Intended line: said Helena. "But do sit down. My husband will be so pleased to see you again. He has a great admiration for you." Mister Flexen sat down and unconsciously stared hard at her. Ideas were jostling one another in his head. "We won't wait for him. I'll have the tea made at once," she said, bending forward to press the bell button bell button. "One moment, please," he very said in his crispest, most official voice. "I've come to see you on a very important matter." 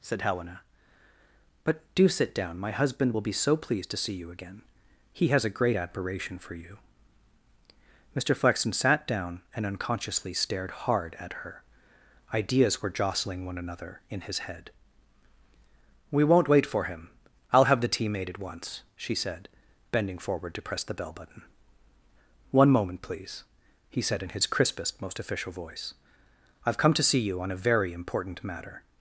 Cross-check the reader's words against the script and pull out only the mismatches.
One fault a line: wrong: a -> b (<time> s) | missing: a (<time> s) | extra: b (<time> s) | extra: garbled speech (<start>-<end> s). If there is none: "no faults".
missing: bell button (21.4 s)
missing: very (24.0 s)